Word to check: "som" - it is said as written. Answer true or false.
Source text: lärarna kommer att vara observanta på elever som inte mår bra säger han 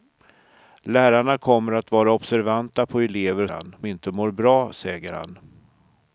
false